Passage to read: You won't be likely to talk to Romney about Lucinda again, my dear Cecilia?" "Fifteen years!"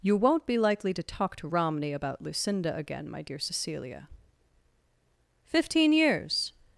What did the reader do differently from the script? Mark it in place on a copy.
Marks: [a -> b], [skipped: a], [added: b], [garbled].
You won't be likely to talk to Romney about Lucinda again, my dear Cecilia?" "Fifteen years!"